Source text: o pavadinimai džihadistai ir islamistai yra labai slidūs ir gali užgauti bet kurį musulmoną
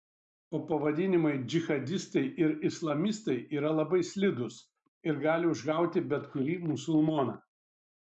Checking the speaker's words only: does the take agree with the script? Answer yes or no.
yes